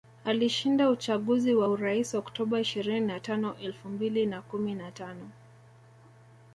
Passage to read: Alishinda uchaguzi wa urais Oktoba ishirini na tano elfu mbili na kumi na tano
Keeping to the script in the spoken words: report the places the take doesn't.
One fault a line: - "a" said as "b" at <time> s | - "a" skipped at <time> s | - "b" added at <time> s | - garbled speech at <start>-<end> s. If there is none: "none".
none